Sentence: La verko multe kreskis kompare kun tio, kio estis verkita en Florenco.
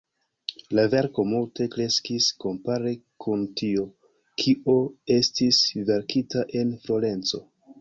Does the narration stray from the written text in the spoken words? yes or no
no